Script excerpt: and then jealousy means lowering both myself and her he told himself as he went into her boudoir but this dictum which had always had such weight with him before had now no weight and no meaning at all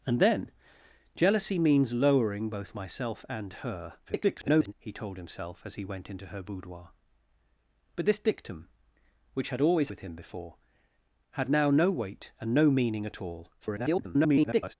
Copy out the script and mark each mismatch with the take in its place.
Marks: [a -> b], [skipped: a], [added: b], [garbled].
and then jealousy means lowering both myself and her [garbled] he told himself as he went into her boudoir but this dictum which had always [skipped: had such weight] with him before had now no weight and no meaning at all [garbled]